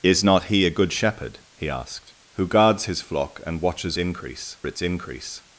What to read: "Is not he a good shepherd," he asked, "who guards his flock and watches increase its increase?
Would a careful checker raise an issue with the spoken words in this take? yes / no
no